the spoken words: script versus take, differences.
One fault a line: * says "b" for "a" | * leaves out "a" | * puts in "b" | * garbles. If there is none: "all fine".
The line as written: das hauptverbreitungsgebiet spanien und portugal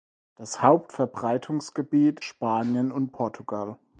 all fine